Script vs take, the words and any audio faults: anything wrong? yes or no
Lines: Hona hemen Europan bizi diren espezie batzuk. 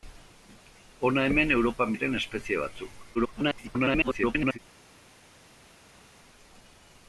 yes